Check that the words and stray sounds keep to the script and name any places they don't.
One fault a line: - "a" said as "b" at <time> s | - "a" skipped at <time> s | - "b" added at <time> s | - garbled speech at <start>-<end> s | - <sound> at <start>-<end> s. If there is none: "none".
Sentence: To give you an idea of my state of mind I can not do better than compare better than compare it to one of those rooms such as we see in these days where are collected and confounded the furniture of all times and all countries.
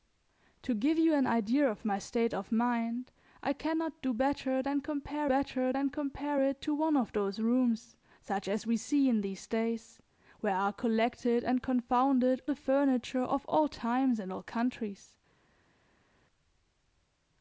none